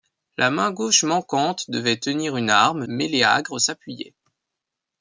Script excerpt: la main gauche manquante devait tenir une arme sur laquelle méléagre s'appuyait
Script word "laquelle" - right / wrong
wrong